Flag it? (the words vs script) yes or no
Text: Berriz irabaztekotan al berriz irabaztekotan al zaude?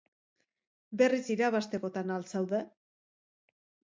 yes